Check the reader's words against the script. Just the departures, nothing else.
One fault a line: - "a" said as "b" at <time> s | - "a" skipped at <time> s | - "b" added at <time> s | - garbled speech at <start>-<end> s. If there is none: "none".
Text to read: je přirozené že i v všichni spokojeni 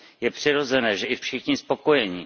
none